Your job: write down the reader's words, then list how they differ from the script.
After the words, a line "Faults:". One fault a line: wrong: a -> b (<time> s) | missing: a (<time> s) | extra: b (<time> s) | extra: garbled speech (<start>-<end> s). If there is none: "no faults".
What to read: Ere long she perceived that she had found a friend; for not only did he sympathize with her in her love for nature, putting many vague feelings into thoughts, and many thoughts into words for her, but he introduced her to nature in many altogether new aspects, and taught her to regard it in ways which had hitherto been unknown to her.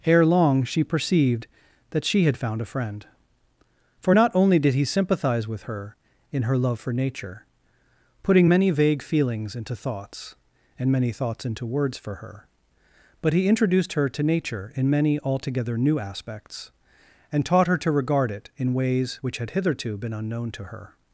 Ere long she perceived that she had found a friend; for not only did he sympathize with her in her love for nature, putting many vague feelings into thoughts, and many thoughts into words for her, but he introduced her to nature in many altogether new aspects, and taught her to regard it in ways which had hitherto been unknown to her.
Faults:
no faults